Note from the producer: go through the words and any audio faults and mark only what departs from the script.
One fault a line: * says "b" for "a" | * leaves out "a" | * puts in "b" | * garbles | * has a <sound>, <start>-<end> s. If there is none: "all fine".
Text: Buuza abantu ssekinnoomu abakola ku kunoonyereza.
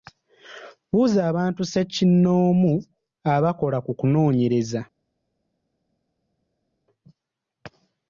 all fine